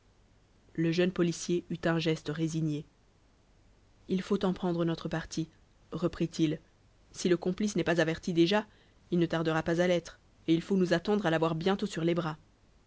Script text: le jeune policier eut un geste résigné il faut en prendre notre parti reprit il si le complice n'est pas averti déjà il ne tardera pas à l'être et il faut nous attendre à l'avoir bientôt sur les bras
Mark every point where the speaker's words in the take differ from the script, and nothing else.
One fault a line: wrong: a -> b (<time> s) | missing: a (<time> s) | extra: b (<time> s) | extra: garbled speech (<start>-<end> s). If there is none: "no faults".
no faults